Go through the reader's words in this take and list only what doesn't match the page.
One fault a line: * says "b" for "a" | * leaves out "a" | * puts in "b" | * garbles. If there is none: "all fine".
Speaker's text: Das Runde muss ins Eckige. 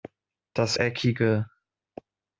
* leaves out "Runde muss ins"